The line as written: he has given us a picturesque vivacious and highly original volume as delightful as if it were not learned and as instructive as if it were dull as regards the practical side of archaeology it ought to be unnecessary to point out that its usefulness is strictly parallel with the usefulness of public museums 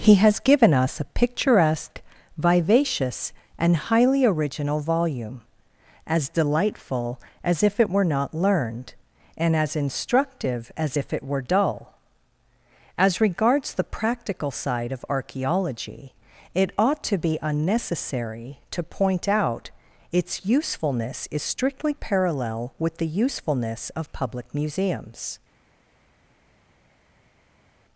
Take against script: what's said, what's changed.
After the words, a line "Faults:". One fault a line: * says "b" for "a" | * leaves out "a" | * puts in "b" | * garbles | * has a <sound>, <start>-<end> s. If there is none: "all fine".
he has given us a picturesque vivacious and highly original volume as delightful as if it were not learned and as instructive as if it were dull as regards the practical side of archaeology it ought to be unnecessary to point out its usefulness is strictly parallel with the usefulness of public museums
Faults:
* leaves out "that"